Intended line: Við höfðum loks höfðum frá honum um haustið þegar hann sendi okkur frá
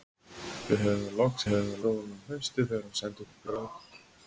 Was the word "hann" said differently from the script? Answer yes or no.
no